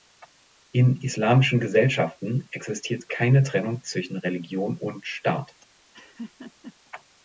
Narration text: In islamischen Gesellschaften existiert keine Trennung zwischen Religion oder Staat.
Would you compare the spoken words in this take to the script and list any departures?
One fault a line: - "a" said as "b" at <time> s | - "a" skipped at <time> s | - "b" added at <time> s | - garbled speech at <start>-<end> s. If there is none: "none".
- "oder" said as "und" at 4.8 s